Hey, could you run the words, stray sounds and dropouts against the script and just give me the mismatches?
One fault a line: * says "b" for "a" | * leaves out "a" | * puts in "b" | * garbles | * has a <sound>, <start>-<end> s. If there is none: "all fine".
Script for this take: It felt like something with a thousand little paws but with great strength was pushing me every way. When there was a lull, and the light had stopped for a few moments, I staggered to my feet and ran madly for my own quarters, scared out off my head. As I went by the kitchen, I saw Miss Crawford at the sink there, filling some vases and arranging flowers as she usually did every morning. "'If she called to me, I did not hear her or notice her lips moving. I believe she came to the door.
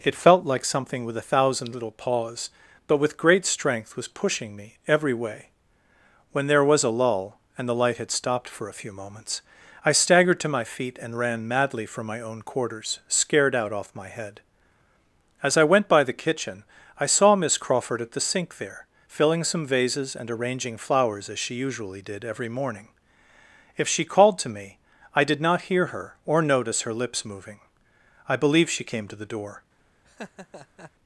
* has a laugh, 30.0-30.9 s